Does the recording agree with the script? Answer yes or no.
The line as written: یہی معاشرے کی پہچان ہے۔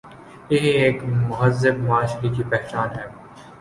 no